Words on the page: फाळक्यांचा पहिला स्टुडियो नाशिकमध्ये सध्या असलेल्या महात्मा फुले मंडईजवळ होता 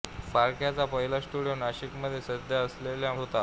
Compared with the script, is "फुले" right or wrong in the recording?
wrong